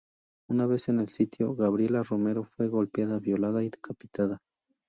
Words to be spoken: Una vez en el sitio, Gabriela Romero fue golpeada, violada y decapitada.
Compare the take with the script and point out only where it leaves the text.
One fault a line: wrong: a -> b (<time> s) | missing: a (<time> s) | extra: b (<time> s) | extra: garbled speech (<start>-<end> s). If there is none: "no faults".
no faults